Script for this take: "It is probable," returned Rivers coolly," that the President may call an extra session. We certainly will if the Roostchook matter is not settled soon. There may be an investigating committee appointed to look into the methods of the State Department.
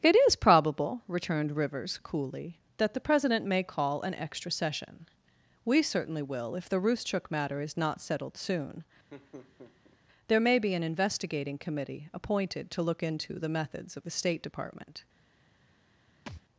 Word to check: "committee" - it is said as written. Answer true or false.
true